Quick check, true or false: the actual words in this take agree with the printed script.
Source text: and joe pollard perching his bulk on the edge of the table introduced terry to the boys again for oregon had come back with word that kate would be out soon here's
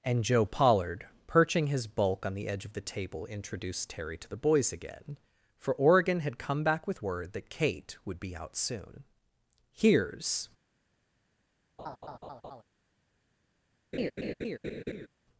true